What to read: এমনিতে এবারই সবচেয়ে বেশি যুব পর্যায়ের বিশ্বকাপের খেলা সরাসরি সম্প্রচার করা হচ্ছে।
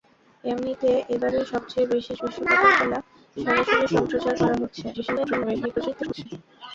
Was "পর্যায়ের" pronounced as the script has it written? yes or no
no